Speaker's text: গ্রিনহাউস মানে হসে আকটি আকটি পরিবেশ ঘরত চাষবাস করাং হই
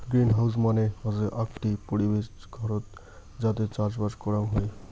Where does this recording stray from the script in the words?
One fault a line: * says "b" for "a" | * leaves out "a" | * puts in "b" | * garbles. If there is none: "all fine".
* leaves out "আকটি"
* puts in "যাতে"